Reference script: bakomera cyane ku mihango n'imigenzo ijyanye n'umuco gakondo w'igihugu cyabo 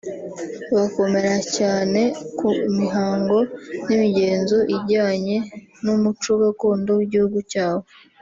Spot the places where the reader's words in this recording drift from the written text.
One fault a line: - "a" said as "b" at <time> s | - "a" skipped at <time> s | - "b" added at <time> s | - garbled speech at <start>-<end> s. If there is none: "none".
none